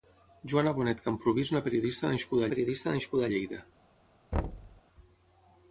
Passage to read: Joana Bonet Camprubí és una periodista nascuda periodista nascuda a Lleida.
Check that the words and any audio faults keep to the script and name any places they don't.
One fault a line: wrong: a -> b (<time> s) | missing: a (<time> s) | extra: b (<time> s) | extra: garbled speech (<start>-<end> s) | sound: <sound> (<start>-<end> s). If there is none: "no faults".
sound: thud (4.3-4.8 s)